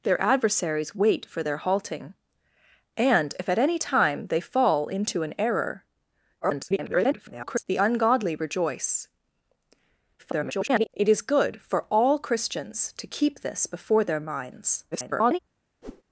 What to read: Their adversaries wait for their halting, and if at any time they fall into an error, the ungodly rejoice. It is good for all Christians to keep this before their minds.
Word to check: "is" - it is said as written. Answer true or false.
true